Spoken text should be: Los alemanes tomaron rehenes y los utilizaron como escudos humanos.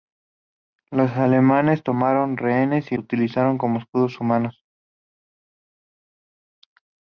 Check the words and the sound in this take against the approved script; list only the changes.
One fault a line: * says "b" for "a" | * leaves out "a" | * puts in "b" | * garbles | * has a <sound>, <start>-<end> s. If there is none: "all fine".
* leaves out "los"